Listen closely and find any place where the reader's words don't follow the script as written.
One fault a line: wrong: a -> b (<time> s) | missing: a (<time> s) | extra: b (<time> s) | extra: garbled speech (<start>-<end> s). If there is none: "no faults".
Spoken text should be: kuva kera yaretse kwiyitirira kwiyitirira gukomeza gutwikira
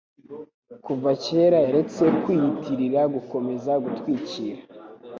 missing: kwiyitirira (3.0 s)